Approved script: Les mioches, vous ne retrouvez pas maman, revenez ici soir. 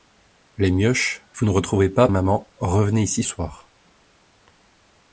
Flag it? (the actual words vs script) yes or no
no